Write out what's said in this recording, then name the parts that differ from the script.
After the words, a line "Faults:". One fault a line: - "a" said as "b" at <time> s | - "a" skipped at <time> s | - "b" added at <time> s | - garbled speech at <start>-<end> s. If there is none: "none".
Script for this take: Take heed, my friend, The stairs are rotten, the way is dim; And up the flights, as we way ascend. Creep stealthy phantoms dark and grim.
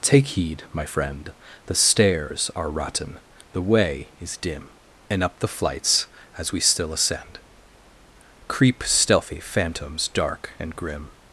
Take heed, my friend, The stairs are rotten, the way is dim; And up the flights, as we still ascend. Creep stealthy phantoms dark and grim.
Faults:
- "way" said as "still" at 6.6 s